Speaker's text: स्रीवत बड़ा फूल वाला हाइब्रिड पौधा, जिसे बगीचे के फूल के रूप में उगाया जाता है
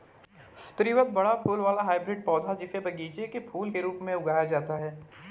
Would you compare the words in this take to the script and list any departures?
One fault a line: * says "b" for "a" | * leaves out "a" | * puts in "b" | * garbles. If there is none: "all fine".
all fine